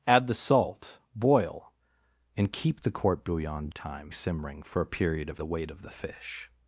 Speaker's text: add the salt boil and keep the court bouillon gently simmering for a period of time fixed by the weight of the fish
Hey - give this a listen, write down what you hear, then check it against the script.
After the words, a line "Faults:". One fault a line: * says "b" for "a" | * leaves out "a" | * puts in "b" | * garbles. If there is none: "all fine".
add the salt boil and keep the court bouillon time simmering for a period of the weight of the fish
Faults:
* says "time" for "gently"
* leaves out "time fixed by"